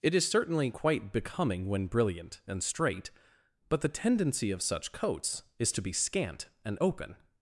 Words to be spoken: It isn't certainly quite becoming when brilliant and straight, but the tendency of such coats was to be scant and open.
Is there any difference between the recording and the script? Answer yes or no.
yes